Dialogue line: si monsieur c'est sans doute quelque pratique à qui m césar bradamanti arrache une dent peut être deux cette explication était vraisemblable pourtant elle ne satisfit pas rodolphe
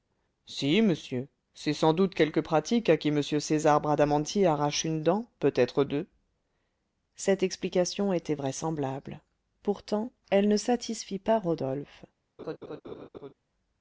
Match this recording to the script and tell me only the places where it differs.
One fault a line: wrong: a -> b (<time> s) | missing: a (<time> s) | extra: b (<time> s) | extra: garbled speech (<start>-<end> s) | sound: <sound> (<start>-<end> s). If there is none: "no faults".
sound: laugh (12.4-13.3 s)